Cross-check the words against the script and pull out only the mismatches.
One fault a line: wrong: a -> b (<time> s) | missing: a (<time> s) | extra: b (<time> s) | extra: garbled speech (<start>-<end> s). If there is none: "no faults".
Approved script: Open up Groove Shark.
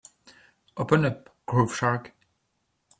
no faults